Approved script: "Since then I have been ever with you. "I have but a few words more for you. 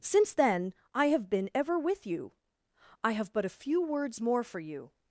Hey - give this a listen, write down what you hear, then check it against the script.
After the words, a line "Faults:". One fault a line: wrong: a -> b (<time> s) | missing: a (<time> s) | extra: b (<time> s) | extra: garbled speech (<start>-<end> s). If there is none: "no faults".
"Since then I have been ever with you. "I have but a few words more for you.
Faults:
no faults